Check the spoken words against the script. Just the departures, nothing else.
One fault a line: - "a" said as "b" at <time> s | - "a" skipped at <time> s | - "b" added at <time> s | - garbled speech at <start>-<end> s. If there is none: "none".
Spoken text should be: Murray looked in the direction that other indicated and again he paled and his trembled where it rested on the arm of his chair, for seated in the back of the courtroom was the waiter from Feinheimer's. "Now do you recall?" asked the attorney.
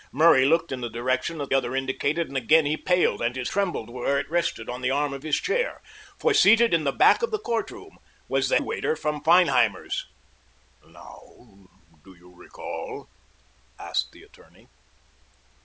none